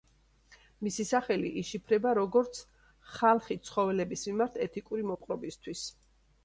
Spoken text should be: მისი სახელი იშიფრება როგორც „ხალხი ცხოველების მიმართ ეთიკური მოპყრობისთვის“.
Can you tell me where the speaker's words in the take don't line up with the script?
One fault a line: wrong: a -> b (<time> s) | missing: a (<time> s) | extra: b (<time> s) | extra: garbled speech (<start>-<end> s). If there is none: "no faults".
no faults